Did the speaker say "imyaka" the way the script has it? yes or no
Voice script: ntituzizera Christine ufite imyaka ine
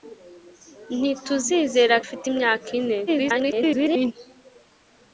yes